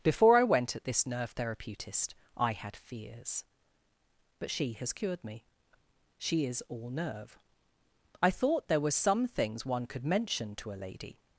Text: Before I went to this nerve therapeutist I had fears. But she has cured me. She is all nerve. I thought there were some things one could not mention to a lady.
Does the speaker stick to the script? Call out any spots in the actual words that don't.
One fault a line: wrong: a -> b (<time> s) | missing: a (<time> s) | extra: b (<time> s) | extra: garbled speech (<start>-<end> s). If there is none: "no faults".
wrong: to -> at (0.8 s)
missing: not (10.0 s)